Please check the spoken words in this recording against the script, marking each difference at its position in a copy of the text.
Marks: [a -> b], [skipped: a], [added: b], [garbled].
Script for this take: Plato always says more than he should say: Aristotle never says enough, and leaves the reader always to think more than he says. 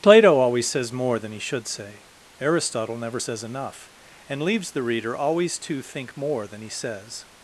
Plato always says more than he should say: Aristotle never says enough, and leaves the reader always to think more than he says.